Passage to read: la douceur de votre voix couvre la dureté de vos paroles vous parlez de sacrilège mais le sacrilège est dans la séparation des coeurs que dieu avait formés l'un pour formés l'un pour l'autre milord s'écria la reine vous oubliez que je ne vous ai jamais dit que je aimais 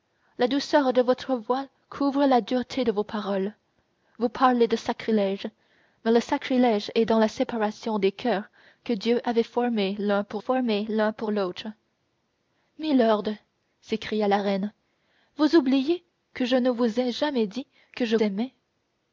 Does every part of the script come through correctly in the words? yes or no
yes